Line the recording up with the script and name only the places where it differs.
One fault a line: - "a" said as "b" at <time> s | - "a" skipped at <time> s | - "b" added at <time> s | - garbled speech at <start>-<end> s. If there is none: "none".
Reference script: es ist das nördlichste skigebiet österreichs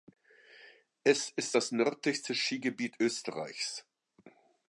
none